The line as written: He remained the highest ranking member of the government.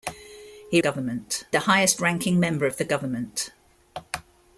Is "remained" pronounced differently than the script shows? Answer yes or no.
yes